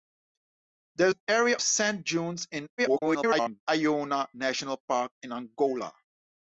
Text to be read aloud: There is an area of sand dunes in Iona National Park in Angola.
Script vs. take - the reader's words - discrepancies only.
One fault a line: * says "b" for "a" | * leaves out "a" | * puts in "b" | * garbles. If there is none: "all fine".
* leaves out "is"
* leaves out "of"
* garbles